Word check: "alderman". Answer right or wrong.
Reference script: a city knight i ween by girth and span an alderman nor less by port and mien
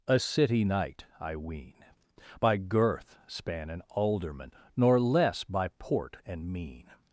right